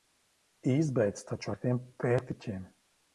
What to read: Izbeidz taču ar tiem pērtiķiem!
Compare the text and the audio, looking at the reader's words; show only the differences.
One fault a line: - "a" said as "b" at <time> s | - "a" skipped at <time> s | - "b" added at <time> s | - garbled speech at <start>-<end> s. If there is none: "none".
none